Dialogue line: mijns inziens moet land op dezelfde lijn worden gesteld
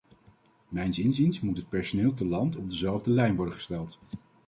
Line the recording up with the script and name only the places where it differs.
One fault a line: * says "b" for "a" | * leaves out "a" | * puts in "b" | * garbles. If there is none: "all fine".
* puts in "het personeel te"